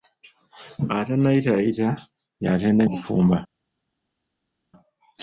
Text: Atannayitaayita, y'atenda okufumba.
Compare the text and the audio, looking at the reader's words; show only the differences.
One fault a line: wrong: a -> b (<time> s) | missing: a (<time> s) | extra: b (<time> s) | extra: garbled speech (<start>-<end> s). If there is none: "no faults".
no faults